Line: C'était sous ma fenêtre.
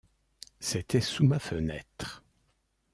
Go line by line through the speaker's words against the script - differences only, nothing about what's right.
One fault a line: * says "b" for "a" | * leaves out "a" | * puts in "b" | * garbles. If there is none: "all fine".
all fine